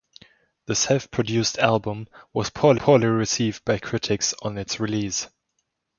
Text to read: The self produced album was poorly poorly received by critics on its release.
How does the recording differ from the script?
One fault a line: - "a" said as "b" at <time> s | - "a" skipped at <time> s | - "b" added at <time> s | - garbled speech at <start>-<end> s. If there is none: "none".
none